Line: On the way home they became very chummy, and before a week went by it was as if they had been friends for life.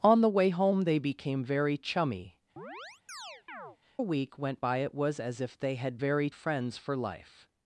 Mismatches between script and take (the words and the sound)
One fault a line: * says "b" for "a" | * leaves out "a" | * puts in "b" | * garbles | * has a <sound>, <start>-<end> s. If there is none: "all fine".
* leaves out "and before"
* has a chirp, 2.6-3.8 s
* says "very" for "been"